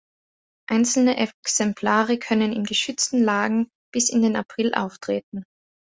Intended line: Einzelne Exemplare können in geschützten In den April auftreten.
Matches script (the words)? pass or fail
fail